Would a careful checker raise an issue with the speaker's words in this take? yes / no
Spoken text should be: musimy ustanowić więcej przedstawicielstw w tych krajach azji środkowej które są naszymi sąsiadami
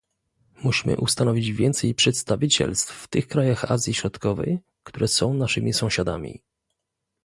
no